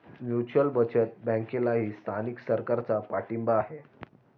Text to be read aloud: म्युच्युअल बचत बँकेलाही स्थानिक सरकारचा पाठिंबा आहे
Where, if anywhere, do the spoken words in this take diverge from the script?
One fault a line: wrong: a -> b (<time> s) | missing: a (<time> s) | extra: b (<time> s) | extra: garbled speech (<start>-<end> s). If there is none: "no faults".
no faults